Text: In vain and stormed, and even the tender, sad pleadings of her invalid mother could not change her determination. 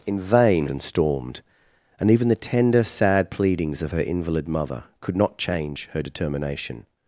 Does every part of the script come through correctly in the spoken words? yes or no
yes